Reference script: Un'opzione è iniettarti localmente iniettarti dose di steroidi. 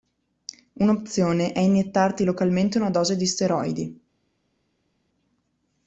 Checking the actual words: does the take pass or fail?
fail